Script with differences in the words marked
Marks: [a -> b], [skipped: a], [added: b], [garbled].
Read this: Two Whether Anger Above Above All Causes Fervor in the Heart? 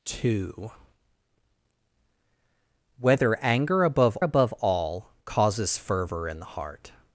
Two Whether Anger Above Above All Causes Fervor in the Heart?